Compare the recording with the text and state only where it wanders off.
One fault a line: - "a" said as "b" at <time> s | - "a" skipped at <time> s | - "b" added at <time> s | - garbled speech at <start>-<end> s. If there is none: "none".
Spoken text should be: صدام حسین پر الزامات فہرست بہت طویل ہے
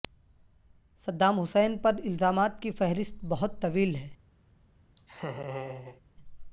- "کی" added at 2.6 s